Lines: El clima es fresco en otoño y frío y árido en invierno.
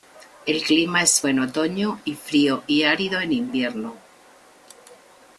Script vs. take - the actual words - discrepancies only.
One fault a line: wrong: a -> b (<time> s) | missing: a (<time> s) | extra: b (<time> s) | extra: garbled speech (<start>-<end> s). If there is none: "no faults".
missing: fresco (1.2 s)